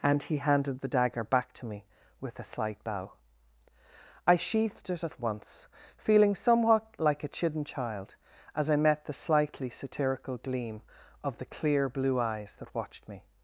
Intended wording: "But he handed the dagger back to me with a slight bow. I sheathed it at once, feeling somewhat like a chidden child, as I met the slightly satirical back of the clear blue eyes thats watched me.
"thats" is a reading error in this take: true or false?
true